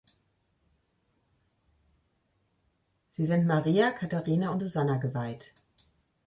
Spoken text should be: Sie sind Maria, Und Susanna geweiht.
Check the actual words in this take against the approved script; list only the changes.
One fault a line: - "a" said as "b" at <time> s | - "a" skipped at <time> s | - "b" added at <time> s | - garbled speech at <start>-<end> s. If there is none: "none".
- "Katharina" added at 3.9 s